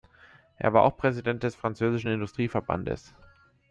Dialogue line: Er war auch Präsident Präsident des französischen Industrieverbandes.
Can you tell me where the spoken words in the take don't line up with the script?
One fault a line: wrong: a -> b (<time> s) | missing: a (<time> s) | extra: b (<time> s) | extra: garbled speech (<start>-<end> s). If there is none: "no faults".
missing: Präsident (1.4 s)